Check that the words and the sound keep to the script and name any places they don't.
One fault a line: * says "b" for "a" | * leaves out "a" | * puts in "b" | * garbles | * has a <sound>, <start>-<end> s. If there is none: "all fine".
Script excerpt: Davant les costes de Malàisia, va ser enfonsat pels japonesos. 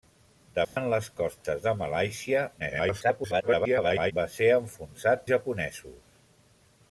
* has a dropout, 0.6-0.8 s
* garbles
* leaves out "pels"